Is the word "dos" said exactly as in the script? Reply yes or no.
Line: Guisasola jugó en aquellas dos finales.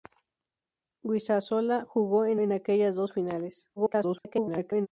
yes